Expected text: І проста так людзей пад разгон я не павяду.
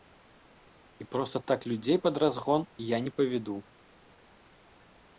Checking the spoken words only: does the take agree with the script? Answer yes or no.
yes